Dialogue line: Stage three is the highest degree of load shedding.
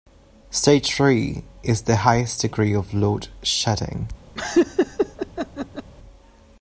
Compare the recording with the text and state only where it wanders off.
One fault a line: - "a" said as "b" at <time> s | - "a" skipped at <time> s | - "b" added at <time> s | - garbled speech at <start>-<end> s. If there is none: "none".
none